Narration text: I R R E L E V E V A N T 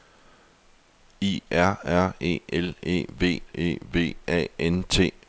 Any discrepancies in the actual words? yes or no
no